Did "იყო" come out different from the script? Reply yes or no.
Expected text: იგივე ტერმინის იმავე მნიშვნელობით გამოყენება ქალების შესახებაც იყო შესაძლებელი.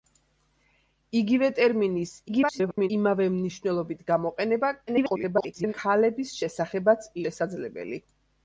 yes